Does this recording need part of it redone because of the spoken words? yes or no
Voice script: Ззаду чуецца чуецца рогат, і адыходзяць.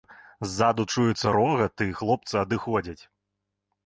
yes